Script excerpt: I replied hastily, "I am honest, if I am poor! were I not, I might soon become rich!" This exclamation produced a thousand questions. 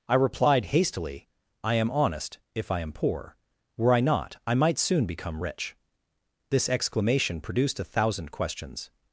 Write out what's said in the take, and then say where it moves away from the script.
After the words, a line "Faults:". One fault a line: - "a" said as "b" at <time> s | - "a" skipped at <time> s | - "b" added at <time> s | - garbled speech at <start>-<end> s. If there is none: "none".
I replied hastily, "I am honest, if I am poor! were I not, I might soon become rich!" This exclamation produced a thousand questions.
Faults:
none